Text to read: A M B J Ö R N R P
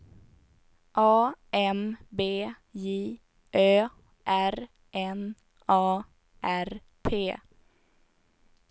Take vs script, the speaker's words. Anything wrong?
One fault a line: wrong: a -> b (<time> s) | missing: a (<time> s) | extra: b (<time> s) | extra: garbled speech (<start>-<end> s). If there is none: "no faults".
extra: A (5.7 s)